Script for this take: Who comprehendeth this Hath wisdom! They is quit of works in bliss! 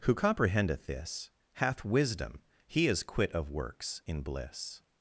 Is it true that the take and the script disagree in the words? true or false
true